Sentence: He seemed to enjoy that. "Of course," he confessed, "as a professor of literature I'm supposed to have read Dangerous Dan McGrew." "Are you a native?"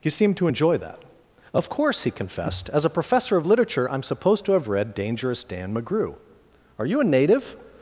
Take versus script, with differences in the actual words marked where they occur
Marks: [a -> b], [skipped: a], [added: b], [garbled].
He seemed to enjoy that. "Of course," he confessed, "as a professor of literature I'm supposed to have read Dangerous Dan McGrew." "Are you a native?"